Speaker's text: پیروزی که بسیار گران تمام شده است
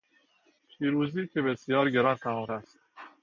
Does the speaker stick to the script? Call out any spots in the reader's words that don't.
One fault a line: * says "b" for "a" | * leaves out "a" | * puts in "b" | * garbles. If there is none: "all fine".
* leaves out "شده"